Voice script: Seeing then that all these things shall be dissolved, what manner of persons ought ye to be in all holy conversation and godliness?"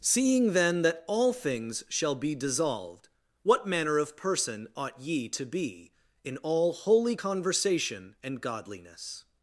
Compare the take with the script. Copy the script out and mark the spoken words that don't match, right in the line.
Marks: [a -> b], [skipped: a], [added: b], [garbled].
Seeing then that all [skipped: these] things shall be dissolved, what manner of [persons -> person] ought ye to be in all holy conversation and godliness?"